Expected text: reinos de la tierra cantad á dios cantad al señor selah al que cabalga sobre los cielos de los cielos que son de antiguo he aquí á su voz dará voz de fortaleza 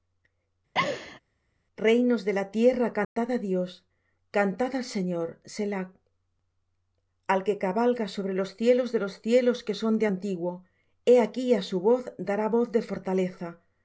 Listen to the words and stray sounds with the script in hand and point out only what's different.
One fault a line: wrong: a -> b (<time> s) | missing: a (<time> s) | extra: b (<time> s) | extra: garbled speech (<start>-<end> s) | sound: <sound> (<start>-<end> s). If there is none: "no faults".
sound: laugh (0.7-1.2 s)
sound: dropout (3.0-3.2 s)